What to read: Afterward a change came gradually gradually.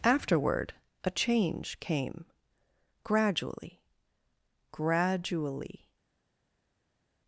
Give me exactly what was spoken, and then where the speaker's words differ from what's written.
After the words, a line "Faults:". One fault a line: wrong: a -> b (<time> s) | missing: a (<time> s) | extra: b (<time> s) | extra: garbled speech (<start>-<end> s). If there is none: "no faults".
Afterward a change came gradually gradually.
Faults:
no faults